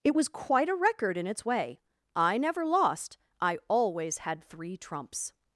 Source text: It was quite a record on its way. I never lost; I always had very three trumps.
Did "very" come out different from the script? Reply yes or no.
yes